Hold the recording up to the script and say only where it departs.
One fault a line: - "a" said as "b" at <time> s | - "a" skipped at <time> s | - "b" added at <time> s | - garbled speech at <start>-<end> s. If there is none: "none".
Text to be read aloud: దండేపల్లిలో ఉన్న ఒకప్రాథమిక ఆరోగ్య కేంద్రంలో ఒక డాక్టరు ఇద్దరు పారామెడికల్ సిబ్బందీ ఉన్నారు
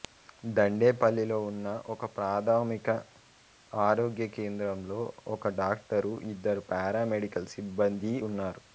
none